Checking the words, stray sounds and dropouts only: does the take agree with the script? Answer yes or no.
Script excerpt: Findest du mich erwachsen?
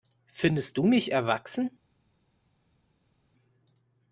yes